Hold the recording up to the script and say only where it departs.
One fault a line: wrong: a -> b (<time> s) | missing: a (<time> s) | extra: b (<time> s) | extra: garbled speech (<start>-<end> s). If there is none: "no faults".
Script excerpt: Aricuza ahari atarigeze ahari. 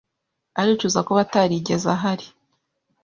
wrong: ahari -> kuba (1.1 s)